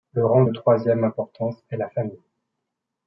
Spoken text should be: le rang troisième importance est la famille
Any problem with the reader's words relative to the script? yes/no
yes